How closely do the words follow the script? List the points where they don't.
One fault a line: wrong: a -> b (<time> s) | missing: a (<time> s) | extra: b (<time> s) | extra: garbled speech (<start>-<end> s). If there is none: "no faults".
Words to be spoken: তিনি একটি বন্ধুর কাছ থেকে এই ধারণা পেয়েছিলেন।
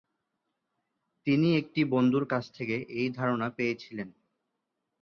no faults